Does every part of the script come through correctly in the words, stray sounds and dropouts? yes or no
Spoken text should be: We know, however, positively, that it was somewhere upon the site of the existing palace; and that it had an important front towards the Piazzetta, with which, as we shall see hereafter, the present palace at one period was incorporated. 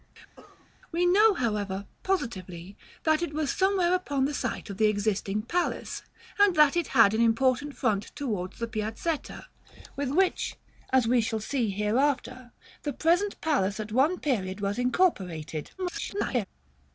no